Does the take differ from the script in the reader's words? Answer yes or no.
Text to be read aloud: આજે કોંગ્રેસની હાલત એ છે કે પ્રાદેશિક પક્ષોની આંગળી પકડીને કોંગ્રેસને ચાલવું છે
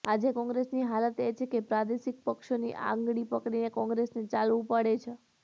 yes